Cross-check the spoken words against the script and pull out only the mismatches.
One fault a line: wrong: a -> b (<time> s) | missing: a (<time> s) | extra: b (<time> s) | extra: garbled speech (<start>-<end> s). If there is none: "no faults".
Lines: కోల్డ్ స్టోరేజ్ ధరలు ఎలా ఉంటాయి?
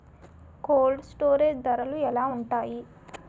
no faults